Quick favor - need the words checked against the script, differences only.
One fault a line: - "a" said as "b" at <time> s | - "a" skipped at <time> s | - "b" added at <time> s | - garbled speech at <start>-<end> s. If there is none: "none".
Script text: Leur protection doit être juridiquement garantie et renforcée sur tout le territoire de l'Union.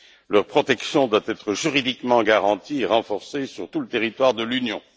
none